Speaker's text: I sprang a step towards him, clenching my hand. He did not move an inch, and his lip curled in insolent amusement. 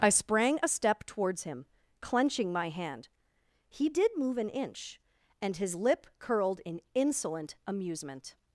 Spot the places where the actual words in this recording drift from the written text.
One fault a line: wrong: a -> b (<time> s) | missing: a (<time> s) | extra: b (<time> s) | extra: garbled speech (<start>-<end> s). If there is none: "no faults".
missing: not (4.1 s)